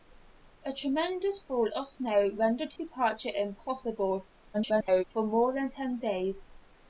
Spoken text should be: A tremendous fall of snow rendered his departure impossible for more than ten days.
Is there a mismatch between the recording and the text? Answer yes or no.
yes